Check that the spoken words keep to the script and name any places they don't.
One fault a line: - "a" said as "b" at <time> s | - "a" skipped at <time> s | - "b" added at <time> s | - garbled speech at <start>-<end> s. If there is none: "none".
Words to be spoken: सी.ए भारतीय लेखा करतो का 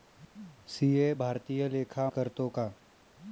none